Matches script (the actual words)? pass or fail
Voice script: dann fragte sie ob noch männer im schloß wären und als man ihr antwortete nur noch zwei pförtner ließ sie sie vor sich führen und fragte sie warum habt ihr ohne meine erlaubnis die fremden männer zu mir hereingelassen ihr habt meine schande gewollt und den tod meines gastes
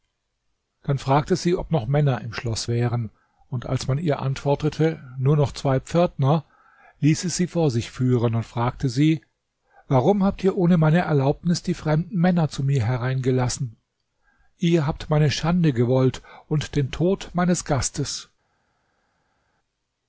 pass